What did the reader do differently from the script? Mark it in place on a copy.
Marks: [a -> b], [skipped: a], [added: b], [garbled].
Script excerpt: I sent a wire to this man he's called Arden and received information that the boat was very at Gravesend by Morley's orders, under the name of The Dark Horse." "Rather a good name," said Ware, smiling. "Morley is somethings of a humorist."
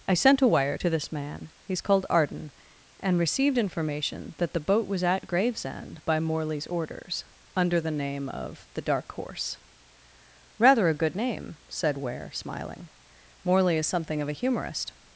I sent a wire to this man he's called Arden and received information that the boat was [skipped: very] at Gravesend by Morley's orders, under the name of The Dark Horse." "Rather a good name," said Ware, smiling. "Morley is [somethings -> something] of a humorist."